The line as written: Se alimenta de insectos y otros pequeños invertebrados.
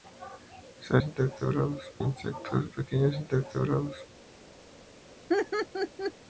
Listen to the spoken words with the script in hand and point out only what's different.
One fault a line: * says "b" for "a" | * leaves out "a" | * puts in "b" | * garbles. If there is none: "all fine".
* says "invertebrados" for "alimenta"
* leaves out "y otros"